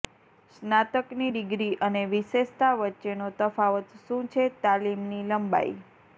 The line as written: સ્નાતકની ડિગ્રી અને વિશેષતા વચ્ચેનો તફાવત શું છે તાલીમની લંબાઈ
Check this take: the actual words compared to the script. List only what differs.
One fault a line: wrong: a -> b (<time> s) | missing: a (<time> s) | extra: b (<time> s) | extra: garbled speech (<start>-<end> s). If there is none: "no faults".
no faults